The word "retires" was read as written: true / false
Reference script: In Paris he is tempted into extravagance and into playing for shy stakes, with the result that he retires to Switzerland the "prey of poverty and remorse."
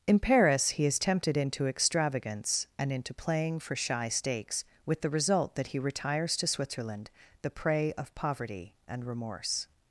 true